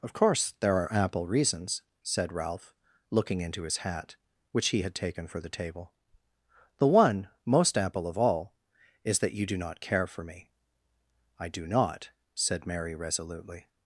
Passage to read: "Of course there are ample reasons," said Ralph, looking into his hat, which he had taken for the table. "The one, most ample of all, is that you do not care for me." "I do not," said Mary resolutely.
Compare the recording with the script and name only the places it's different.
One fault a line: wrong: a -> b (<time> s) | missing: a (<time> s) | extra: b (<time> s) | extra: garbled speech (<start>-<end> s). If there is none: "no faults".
no faults